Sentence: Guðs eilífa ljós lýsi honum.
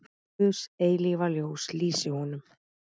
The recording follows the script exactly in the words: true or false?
true